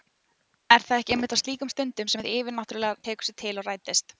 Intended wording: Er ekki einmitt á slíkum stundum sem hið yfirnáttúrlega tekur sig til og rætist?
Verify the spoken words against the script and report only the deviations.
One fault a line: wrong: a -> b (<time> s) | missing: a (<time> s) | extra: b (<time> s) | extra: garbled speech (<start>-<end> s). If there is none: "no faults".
extra: það (0.8 s)